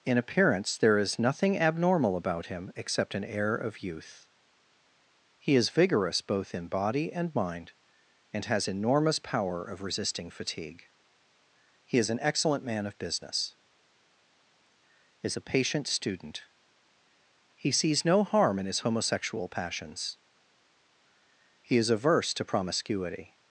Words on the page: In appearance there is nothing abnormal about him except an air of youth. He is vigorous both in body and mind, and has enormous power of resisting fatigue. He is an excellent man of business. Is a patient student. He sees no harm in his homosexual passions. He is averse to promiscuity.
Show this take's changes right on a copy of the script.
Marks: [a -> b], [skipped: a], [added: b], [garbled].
In appearance there is nothing abnormal about him except an air of youth. He is vigorous both in body and mind, and has enormous power of resisting fatigue. He is an excellent man of business. Is a patient student. He sees no harm in his homosexual passions. He is averse to promiscuity.